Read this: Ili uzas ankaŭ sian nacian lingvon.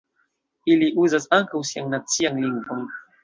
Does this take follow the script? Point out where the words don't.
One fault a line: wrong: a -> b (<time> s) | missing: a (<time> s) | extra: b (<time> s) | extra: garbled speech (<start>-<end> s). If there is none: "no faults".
no faults